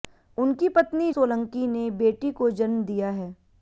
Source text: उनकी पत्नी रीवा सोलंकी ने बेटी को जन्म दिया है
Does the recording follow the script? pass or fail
fail